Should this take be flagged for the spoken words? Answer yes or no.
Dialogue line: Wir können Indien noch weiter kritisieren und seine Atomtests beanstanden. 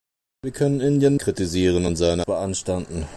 yes